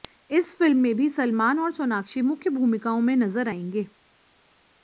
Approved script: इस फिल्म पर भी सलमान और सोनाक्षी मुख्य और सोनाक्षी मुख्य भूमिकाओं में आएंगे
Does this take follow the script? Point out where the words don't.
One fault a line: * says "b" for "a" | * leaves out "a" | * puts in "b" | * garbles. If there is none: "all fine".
* says "में" for "पर"
* leaves out "और सोनाक्षी मुख्य"
* puts in "नजर"